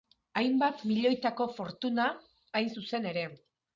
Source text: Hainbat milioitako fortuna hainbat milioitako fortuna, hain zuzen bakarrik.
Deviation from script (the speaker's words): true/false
true